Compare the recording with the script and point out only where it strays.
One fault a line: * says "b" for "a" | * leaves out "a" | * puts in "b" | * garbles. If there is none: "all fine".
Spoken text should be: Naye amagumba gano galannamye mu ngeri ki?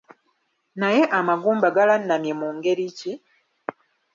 * leaves out "gano"